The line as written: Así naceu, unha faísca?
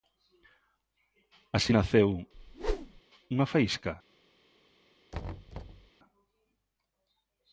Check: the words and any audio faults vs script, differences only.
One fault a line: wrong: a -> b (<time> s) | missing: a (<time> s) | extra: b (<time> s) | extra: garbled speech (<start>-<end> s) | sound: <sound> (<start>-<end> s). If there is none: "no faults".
sound: whoosh (2.3-3.0 s)
sound: thud (5.1-5.9 s)